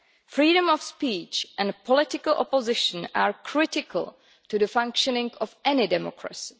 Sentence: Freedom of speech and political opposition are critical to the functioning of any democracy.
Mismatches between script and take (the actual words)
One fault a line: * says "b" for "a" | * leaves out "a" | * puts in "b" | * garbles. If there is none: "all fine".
all fine